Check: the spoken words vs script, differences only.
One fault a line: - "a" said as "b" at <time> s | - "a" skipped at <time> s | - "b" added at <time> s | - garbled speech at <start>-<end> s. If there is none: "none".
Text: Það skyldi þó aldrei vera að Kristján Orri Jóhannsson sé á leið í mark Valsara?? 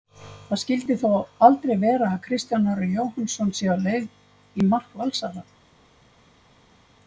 none